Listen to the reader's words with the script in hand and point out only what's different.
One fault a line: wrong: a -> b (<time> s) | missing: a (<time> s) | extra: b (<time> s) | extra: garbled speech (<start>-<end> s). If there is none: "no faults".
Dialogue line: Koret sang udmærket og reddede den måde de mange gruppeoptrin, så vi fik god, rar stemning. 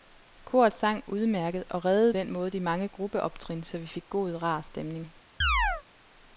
no faults